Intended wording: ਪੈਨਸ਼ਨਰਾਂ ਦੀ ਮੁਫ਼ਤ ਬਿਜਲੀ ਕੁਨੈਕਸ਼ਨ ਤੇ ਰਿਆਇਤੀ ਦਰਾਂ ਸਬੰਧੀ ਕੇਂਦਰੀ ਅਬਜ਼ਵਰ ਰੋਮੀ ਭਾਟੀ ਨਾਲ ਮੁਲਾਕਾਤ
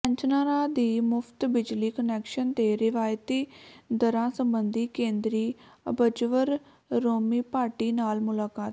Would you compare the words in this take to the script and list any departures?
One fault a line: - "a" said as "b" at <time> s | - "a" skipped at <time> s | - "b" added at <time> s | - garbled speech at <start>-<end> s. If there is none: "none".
none